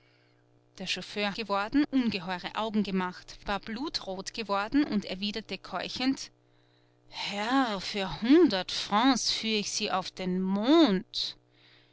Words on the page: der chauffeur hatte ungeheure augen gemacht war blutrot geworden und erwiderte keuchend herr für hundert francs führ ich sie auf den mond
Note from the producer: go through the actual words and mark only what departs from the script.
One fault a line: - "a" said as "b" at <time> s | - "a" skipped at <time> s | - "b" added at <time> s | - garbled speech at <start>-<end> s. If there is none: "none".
- "hatte" said as "geworden" at 1.3 s